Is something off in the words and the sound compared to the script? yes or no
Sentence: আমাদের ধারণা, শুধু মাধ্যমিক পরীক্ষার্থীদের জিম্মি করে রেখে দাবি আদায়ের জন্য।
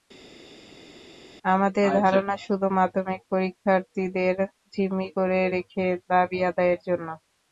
no